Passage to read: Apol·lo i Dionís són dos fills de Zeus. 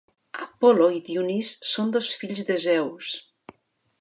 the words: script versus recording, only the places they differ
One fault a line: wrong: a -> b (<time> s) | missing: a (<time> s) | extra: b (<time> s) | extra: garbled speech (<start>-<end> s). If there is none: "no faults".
no faults